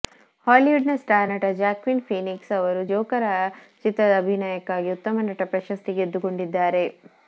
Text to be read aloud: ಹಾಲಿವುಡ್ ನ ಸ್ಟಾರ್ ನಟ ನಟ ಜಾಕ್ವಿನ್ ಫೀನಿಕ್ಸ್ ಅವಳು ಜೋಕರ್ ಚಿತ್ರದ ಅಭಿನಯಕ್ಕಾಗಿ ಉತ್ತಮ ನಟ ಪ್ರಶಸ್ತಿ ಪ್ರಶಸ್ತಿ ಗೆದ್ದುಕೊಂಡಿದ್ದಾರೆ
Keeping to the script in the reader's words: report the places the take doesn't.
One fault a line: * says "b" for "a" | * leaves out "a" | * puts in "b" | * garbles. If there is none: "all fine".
* leaves out "ನಟ"
* says "ಅವರು" for "ಅವಳು"
* leaves out "ಪ್ರಶಸ್ತಿ"